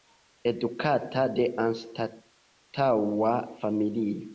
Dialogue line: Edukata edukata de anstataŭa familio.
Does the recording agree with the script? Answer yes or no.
no